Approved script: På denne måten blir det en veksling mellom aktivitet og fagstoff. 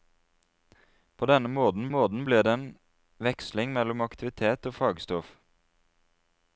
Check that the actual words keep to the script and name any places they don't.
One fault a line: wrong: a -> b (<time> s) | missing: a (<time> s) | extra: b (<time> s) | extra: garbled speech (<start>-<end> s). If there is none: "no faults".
extra: måten (1.9 s)